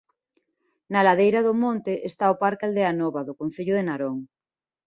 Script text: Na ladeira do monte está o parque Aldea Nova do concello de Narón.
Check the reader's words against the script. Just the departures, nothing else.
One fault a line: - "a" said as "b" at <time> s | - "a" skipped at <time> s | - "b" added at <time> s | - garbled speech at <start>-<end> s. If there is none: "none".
none